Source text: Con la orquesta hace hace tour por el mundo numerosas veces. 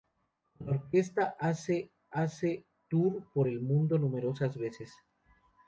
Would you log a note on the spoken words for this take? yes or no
no